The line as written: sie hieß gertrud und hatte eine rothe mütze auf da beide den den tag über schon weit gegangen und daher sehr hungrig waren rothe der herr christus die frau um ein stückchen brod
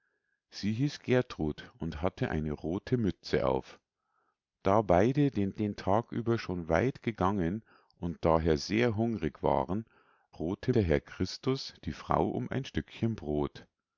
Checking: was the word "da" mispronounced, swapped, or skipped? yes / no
no